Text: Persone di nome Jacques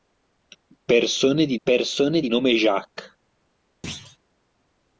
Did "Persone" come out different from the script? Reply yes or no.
no